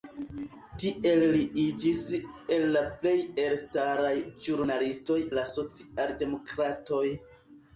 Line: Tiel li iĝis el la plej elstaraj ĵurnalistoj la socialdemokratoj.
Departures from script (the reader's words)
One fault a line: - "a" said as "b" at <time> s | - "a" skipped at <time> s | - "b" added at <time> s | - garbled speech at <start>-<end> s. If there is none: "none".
none